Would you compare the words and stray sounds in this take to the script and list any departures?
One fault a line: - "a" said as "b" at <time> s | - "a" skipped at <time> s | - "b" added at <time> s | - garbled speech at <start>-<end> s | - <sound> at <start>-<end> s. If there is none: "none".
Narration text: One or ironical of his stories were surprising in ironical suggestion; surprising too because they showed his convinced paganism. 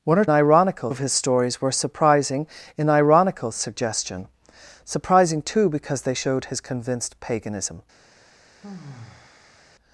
- sigh at 8.6-9.7 s